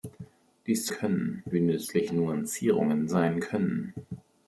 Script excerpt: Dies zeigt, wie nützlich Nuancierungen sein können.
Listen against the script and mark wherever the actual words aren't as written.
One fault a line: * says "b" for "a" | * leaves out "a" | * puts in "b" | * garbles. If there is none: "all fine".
* says "können" for "zeigt"